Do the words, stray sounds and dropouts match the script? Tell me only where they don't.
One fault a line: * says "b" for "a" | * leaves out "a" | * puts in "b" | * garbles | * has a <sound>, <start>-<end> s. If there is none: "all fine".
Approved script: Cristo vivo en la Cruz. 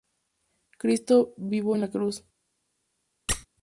* has a squeak, 3.3-3.5 s